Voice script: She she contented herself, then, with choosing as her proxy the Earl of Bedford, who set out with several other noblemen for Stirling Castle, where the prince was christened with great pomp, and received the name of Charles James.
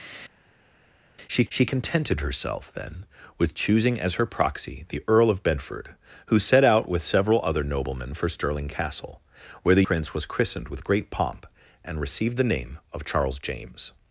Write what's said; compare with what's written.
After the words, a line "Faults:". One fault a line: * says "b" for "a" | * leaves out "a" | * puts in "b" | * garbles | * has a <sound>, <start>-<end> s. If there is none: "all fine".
She she contented herself, then, with choosing as her proxy the Earl of Bedford, who set out with several other noblemen for Stirling Castle, where the prince was christened with great pomp, and received the name of Charles James.
Faults:
all fine